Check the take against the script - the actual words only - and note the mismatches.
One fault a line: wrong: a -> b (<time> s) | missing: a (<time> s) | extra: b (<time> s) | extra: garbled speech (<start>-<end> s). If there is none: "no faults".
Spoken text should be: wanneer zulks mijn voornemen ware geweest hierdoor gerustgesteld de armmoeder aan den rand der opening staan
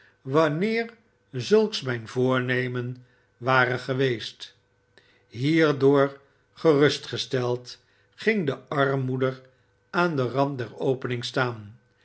extra: ging (8.1 s)